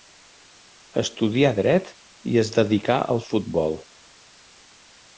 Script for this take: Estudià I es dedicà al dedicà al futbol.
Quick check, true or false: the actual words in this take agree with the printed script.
false